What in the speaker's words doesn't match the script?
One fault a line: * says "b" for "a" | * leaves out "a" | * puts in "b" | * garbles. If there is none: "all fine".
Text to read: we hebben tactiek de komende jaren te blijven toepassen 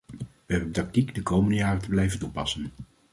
all fine